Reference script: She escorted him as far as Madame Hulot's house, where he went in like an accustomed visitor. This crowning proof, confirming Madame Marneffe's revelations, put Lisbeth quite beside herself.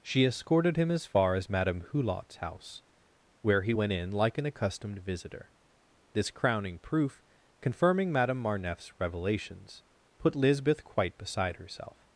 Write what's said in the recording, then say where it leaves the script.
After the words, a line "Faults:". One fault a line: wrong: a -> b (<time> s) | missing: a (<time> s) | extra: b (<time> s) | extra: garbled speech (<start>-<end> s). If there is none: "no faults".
She escorted him as far as Madame Hulot's house, where he went in like an accustomed visitor. This crowning proof, confirming Madame Marneffe's revelations, put Lisbeth quite beside herself.
Faults:
no faults